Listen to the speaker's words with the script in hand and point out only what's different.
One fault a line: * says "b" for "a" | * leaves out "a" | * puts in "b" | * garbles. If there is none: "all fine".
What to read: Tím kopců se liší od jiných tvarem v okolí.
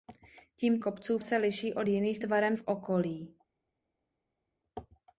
all fine